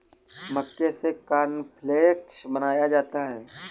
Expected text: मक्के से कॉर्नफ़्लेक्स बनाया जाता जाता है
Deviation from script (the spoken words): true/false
true